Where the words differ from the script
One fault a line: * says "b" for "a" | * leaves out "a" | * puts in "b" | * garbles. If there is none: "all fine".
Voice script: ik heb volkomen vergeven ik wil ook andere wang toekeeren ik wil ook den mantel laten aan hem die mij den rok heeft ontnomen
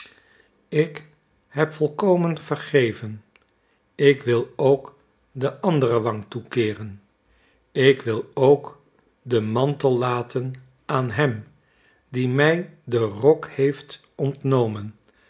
* puts in "de"